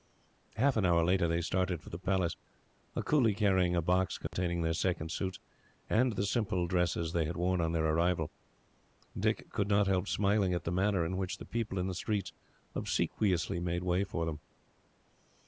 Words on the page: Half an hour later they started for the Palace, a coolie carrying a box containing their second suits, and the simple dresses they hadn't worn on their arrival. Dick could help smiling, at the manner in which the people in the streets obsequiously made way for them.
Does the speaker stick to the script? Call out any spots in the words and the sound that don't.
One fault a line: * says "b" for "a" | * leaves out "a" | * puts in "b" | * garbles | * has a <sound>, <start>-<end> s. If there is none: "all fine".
* has a dropout, 4.3-4.3 s
* says "had" for "hadn't"
* puts in "not"